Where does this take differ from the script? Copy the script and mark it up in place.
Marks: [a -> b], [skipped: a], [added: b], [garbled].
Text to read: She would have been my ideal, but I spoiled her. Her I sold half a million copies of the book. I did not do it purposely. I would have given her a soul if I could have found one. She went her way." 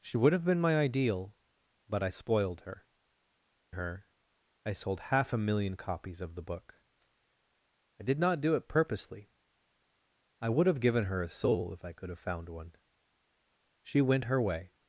She would have been my ideal, but I spoiled her. Her I sold half a million copies of the book. I did not do it purposely. I would have given her a soul if I could have found one. She went her way."